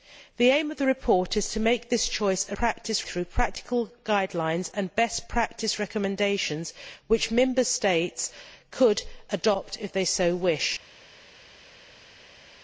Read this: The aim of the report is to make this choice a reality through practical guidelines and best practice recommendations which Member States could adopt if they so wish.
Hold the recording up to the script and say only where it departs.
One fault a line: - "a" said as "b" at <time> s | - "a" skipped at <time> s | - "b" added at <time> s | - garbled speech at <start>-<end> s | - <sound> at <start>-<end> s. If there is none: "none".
- "reality" said as "practice" at 2.5 s